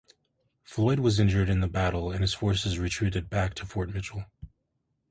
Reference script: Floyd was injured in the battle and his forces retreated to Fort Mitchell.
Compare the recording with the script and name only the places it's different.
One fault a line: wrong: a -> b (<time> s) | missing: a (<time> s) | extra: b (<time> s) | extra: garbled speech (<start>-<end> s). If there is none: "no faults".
extra: back (3.3 s)